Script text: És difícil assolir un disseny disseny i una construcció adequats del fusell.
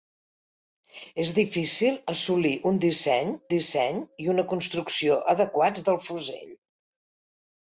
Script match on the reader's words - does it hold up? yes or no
yes